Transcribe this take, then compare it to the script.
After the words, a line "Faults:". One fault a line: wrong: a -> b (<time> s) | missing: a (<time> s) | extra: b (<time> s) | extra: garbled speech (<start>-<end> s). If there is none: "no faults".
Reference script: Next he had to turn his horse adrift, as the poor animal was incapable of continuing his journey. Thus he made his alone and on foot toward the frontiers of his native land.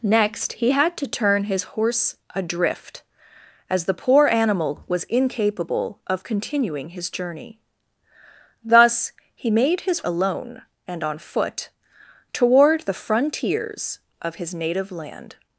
Next he had to turn his horse adrift, as the poor animal was incapable of continuing his journey. Thus he made his alone and on foot toward the frontiers of his native land.
Faults:
no faults